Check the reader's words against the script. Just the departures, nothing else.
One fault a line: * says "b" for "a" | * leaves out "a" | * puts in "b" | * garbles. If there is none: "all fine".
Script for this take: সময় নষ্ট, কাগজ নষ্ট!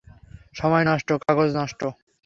all fine